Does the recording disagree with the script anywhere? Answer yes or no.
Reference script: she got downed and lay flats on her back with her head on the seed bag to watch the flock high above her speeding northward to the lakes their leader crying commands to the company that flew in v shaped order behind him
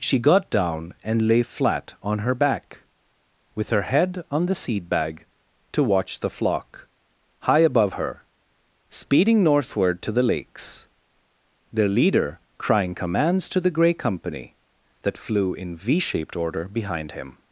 yes